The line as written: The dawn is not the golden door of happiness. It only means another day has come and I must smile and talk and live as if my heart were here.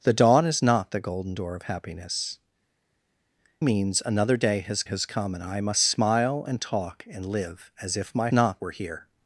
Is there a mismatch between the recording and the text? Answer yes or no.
yes